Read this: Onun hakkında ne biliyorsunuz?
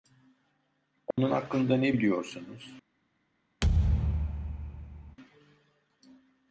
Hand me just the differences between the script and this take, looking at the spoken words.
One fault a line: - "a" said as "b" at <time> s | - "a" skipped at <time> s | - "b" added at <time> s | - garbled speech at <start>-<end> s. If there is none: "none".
none